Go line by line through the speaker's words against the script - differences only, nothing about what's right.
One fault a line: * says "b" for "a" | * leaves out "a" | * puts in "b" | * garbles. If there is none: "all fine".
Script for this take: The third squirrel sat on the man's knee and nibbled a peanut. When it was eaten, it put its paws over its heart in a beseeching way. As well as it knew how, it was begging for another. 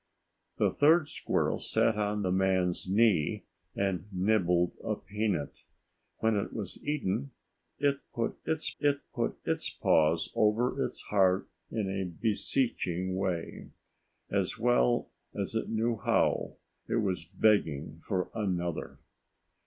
* puts in "it put its"